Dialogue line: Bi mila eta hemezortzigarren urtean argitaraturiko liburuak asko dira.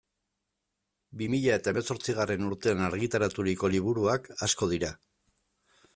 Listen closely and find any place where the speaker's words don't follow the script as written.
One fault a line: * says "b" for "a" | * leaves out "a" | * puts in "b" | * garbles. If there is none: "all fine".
all fine